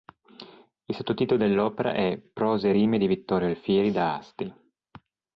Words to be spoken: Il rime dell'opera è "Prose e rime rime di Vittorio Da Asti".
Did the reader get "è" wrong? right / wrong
right